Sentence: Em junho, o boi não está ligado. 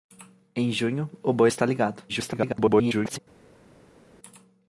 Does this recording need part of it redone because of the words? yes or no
yes